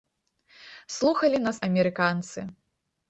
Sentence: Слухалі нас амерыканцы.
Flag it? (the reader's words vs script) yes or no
no